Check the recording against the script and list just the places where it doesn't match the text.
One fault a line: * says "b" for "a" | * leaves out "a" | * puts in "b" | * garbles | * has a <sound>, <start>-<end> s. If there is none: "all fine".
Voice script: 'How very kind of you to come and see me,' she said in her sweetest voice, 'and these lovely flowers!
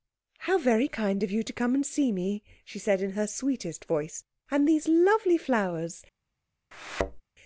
* has a thud, 6.7-7.2 s